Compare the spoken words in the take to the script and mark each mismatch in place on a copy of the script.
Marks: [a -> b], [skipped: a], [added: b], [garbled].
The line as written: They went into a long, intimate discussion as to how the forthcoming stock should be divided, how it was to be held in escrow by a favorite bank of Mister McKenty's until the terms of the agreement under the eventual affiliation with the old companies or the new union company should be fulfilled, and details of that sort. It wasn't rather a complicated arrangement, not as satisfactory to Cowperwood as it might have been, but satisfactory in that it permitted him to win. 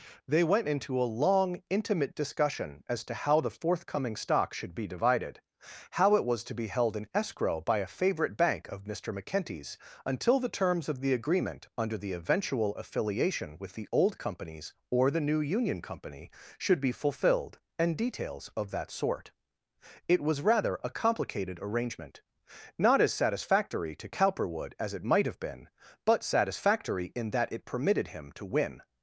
They went into a long, intimate discussion as to how the forthcoming stock should be divided, how it was to be held in escrow by a favorite bank of Mister McKenty's until the terms of the agreement under the eventual affiliation with the old companies or the new union company should be fulfilled, and details of that sort. It [wasn't -> was] rather a complicated arrangement, not as satisfactory to Cowperwood as it might have been, but satisfactory in that it permitted him to win.